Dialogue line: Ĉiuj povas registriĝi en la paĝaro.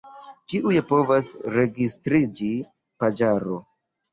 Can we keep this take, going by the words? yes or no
no